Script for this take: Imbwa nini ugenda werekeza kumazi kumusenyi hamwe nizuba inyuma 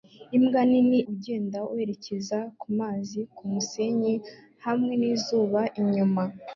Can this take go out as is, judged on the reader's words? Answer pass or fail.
pass